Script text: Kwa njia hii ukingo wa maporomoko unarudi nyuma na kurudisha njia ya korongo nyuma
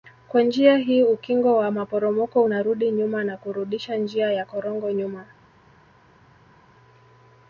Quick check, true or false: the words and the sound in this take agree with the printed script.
true